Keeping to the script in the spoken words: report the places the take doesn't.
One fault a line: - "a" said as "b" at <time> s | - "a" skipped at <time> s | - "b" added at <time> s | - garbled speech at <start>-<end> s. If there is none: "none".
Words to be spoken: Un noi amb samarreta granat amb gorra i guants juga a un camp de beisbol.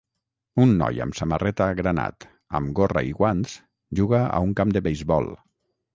none